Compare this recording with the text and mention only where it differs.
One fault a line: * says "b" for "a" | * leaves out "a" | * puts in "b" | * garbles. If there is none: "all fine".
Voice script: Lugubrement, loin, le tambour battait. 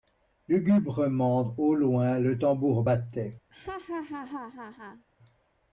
* puts in "au"